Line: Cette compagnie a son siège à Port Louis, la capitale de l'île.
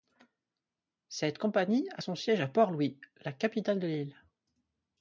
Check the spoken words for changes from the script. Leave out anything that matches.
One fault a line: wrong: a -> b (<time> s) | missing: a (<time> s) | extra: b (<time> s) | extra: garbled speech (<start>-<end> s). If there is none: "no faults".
no faults